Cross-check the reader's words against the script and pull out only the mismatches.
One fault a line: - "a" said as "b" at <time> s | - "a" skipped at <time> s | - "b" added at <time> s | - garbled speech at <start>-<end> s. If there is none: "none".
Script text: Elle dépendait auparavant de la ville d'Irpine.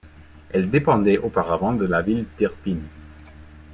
none